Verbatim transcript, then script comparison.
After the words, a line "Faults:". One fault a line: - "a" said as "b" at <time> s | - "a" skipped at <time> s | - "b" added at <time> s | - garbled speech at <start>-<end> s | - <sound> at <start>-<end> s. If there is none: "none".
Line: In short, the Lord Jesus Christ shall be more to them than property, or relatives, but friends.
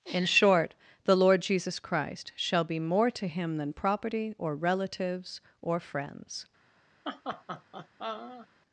In short, the Lord Jesus Christ shall be more to him than property, or relatives, or friends.
Faults:
- "them" said as "him" at 3.3 s
- "but" said as "or" at 5.6 s
- laugh at 7.0-8.5 s